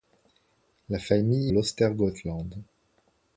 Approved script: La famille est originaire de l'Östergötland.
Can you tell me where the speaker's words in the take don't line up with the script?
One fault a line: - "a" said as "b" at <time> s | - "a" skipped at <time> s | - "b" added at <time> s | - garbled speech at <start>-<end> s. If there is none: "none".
- "est originaire de" skipped at 1.5 s